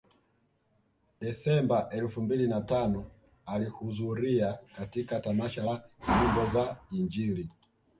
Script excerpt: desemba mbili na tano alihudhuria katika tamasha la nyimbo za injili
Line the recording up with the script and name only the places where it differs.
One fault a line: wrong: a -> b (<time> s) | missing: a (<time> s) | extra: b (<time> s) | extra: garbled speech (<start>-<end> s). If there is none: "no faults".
extra: elfu (1.9 s)